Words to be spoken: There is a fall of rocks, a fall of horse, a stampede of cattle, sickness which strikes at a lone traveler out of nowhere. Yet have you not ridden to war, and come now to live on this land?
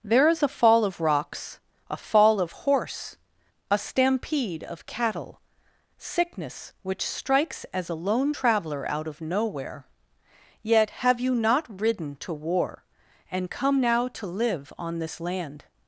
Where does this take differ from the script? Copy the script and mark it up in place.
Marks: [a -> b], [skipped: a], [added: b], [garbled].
There is a fall of rocks, a fall of horse, a stampede of cattle, sickness which strikes [at -> as] a lone traveler out of nowhere. Yet have you not ridden to war, and come now to live on this land?